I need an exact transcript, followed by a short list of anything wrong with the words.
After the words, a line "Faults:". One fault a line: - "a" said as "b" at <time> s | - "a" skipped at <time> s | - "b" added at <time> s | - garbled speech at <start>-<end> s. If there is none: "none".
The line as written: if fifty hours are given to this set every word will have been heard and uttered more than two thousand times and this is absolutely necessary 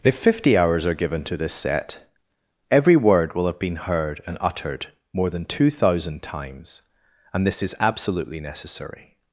if fifty hours are given to this set every word will have been heard and uttered more than two thousand times and this is absolutely necessary
Faults:
none